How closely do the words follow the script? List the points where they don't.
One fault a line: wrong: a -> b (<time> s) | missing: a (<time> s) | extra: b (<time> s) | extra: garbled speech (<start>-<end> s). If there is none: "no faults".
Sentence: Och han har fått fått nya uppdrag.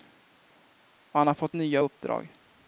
missing: fått (1.6 s)